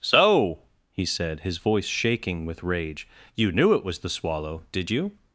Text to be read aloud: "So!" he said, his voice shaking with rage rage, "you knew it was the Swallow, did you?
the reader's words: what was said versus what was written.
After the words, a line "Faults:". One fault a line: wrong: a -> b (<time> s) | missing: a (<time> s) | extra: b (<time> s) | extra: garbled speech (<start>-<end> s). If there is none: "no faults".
"So!" he said, his voice shaking with rage, "you knew it was the Swallow, did you?
Faults:
missing: rage (3.1 s)